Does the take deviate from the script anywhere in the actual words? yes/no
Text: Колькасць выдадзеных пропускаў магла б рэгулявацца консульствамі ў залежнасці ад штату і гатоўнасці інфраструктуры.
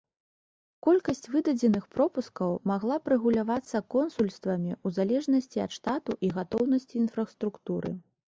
no